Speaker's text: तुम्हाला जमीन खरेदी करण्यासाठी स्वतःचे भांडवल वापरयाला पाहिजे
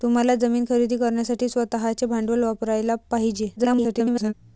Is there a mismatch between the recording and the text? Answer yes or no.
yes